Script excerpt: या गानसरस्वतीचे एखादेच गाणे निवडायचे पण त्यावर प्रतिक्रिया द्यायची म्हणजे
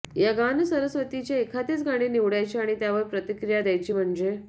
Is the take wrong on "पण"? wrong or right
wrong